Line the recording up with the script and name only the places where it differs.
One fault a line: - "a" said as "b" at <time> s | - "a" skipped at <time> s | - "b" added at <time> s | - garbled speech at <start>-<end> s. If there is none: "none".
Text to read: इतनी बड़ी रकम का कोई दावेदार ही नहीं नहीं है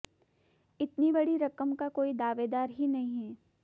- "नहीं" skipped at 3.2 s